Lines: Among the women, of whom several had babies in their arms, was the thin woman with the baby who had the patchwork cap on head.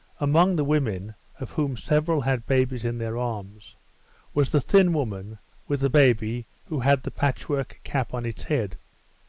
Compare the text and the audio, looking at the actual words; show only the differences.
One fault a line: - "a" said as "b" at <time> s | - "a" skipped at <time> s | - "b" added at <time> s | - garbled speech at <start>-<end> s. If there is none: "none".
- "its" added at 8.2 s